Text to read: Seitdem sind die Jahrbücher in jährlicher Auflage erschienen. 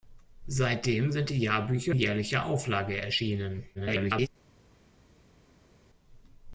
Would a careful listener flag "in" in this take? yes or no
yes